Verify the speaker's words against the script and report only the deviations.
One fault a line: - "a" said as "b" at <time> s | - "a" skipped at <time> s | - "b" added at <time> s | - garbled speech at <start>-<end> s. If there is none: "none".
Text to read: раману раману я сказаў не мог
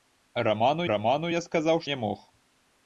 none